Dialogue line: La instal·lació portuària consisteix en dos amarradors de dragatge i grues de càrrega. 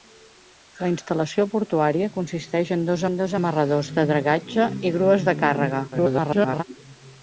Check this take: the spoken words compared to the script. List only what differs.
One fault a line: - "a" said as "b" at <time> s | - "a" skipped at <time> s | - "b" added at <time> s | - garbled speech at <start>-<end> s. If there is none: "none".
- "en dos" added at 3.1 s
- garbled speech at 5.9-6.6 s